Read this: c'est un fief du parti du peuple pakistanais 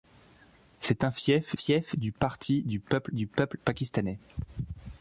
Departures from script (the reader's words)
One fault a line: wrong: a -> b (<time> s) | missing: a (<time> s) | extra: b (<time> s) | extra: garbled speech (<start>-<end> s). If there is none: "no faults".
extra: fief (1.5 s)
extra: du peuple (3.1 s)